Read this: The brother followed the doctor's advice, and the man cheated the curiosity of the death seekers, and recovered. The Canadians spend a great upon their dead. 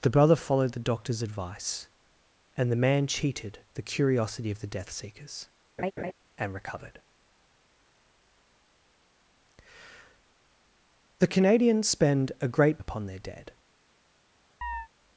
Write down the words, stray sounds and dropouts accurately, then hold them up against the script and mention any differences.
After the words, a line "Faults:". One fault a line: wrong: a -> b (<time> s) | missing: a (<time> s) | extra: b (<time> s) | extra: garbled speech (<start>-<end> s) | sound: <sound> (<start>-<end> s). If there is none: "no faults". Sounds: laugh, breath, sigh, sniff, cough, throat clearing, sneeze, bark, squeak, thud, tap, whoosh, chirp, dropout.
The brother followed the doctor's advice, and the man cheated the curiosity of the death seekers, and recovered. The Canadians spend a great upon their dead.
Faults:
sound: laugh (5.8-6.1 s)
sound: chirp (14.6-14.9 s)